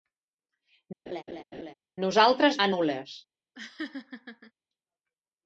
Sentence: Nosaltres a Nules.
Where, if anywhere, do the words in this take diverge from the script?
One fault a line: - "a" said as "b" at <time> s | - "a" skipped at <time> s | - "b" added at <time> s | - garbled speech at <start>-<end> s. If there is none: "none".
none